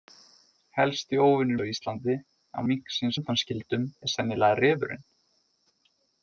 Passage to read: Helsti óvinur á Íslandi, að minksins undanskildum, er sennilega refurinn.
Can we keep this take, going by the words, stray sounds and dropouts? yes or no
yes